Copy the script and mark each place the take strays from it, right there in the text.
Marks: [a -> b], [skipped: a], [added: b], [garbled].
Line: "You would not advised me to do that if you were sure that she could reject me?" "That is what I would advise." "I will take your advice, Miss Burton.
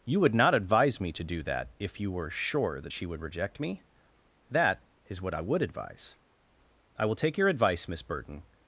"You would not [advised -> advise] me to do that if you were sure that she [could -> would] reject me?" "That is what I would advise." "I will take your advice, Miss Burton.